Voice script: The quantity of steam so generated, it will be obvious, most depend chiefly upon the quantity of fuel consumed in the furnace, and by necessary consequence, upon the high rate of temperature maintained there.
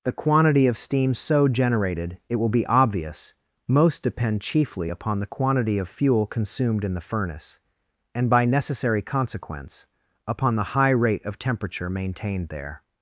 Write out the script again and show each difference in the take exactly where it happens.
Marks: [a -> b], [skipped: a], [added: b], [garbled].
The quantity of steam so generated, it will be obvious, most depend chiefly upon the quantity of fuel consumed in the furnace, and by necessary consequence, upon the high rate of temperature maintained there.